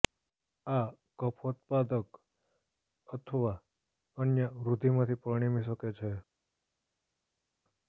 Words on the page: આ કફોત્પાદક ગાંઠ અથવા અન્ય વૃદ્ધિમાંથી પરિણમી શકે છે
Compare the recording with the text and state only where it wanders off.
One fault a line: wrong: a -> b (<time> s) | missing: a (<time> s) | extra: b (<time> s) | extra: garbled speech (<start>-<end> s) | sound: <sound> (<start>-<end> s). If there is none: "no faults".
missing: ગાંઠ (2.1 s)